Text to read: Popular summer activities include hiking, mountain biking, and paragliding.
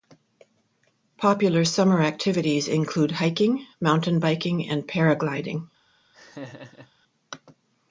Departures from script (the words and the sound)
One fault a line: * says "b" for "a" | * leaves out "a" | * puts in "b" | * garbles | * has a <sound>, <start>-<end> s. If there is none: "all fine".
* has a laugh, 6.1-6.9 s